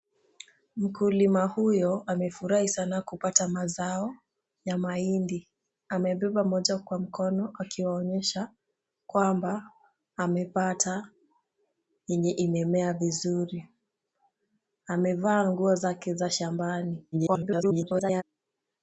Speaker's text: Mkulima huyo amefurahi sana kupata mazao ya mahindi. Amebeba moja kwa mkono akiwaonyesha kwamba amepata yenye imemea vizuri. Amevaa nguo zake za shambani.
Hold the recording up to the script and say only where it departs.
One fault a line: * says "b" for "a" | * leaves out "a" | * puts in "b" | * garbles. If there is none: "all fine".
* garbles